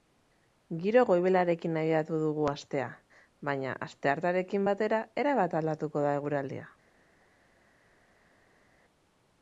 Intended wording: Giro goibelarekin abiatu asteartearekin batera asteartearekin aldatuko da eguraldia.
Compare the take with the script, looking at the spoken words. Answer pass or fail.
fail